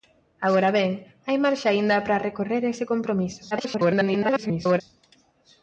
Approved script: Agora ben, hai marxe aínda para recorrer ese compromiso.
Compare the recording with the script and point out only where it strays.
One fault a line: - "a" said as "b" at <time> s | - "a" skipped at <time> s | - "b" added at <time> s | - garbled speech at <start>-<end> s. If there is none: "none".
- garbled speech at 3.5-4.8 s